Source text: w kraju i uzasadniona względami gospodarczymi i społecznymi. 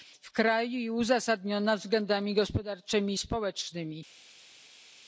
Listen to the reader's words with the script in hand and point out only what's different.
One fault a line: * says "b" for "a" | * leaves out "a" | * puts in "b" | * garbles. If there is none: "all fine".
all fine